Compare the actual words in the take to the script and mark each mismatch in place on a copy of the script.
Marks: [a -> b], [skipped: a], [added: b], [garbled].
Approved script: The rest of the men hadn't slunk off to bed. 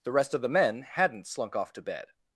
The rest of the men hadn't slunk off to bed.